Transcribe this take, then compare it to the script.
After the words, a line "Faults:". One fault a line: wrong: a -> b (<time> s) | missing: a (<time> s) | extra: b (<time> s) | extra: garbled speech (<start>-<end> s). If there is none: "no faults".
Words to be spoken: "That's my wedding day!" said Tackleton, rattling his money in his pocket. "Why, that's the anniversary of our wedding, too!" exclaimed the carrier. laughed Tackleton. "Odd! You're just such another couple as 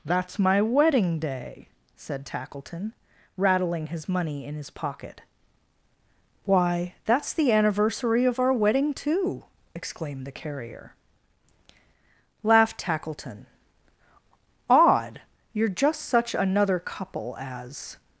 "That's my wedding day!" said Tackleton, rattling his money in his pocket. "Why, that's the anniversary of our wedding, too!" exclaimed the carrier. laughed Tackleton. "Odd! You're just such another couple as
Faults:
no faults